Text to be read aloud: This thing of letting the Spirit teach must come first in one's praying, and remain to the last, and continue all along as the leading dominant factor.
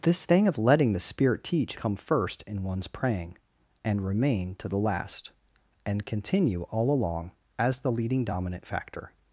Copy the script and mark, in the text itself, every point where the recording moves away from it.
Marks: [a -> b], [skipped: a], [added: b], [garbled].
This thing of letting the Spirit teach [skipped: must] come first in one's praying, and remain to the last, and continue all along as the leading dominant factor.